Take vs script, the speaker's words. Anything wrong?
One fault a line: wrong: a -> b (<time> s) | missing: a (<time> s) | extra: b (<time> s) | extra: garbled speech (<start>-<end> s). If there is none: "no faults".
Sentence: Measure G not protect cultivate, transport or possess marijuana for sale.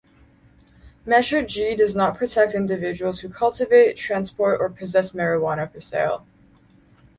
extra: does (1.8 s)
extra: individuals who (2.5 s)